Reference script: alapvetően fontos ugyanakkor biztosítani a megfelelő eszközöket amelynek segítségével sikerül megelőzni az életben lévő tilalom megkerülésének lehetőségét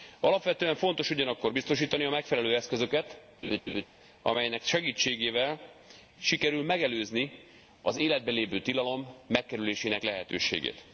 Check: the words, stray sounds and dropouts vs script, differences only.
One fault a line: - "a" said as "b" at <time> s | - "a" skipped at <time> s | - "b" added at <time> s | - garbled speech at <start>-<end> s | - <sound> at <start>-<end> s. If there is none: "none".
- laugh at 3.4-3.9 s